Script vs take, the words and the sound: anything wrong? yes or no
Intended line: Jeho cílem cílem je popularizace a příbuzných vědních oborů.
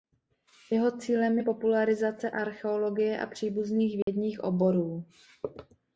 yes